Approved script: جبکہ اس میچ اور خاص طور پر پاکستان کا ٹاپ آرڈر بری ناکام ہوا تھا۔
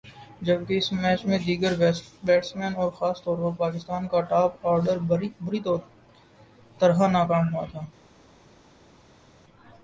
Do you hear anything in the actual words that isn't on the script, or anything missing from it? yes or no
yes